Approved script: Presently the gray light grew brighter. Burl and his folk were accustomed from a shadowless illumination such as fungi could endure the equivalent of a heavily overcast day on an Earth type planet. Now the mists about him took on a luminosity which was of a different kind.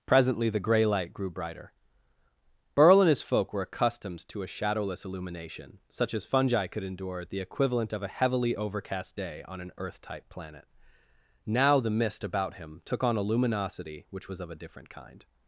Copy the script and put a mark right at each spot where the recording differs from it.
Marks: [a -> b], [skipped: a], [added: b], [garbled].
Presently the gray light grew brighter. Burl and his folk were accustomed [from -> to] a shadowless illumination such as fungi could endure the equivalent of a heavily overcast day on an Earth type planet. Now the [mists -> mist] about him took on a luminosity which was of a different kind.